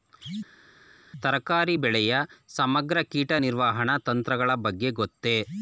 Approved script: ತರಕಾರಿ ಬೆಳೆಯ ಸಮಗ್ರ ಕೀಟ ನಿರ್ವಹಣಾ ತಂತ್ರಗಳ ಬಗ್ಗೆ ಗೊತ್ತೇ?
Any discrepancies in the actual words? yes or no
no